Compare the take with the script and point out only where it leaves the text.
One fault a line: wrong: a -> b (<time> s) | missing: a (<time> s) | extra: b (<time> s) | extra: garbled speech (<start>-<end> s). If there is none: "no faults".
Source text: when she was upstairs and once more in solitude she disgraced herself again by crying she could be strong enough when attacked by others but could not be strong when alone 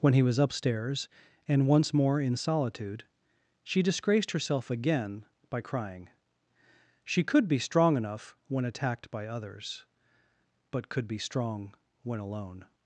wrong: she -> he (0.1 s)
missing: not (11.1 s)